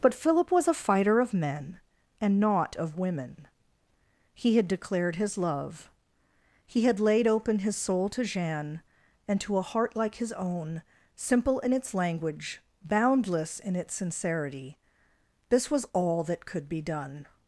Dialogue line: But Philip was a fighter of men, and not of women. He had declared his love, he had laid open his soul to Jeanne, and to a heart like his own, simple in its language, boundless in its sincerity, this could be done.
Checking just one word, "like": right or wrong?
right